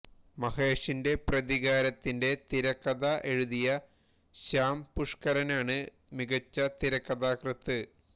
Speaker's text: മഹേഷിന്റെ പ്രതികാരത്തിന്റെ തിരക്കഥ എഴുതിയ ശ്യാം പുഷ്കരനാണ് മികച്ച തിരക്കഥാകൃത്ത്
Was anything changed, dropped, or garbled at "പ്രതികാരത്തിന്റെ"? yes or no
no